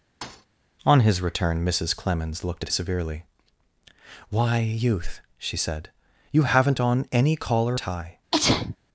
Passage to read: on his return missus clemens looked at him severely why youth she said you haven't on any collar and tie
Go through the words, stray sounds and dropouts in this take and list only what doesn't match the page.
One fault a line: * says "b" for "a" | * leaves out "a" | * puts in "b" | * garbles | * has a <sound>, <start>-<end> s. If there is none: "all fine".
* has a thud, 0.2-0.5 s
* leaves out "him"
* leaves out "and"
* has a sneeze, 8.3-8.8 s